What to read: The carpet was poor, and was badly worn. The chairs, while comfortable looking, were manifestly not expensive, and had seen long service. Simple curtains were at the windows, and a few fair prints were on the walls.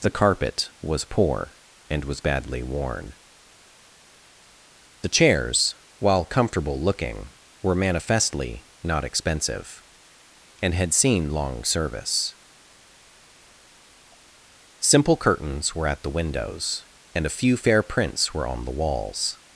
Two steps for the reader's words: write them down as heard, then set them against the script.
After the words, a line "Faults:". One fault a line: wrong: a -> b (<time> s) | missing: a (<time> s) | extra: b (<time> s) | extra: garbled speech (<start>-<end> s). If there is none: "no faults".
The carpet was poor, and was badly worn. The chairs, while comfortable looking, were manifestly not expensive, and had seen long service. Simple curtains were at the windows, and a few fair prints were on the walls.
Faults:
no faults